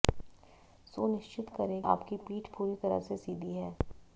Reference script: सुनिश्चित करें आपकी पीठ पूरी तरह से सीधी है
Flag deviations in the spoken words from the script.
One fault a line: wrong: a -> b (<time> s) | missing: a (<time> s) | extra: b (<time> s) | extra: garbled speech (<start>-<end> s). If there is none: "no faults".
no faults